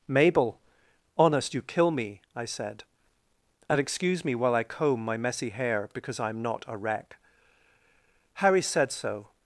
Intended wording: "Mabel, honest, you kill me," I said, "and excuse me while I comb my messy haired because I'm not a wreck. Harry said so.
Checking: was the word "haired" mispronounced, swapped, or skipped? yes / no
yes